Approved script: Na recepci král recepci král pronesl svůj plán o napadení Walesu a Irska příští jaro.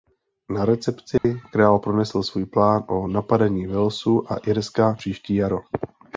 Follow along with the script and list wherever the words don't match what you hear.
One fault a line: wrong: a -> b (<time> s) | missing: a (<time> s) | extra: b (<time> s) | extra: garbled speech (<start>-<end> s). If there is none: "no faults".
missing: recepci král (1.8 s)